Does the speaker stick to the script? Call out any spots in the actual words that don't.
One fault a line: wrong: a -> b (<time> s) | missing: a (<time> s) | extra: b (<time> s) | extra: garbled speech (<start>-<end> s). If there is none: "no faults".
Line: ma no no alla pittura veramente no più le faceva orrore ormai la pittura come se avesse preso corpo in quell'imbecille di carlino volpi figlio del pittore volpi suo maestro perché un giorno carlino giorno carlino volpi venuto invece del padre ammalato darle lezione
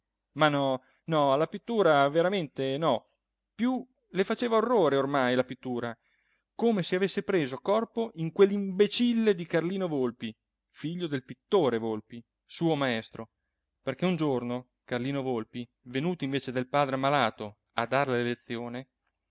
missing: giorno carlino (15.2 s)
extra: a (17.7 s)